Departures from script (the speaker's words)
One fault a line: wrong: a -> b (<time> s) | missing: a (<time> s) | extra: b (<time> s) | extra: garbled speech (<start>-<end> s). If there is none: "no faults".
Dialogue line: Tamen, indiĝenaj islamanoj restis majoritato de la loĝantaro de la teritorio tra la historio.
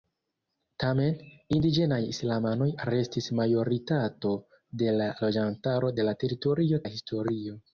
missing: tra (6.9 s)